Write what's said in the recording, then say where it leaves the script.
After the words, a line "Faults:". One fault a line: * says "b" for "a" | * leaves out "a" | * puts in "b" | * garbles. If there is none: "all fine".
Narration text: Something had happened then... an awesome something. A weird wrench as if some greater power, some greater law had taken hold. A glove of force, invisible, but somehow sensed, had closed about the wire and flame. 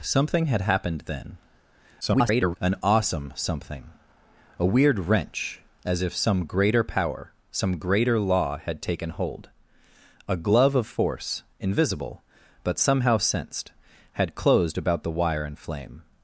Something had happened then... [garbled] an awesome something. A weird wrench as if some greater power, some greater law had taken hold. A glove of force, invisible, but somehow sensed, had closed about the wire and flame.
Faults:
* garbles